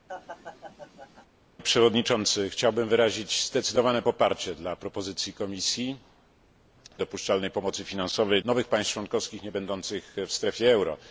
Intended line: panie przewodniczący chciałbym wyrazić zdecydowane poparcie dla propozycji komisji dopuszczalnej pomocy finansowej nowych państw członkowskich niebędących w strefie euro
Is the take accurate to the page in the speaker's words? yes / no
yes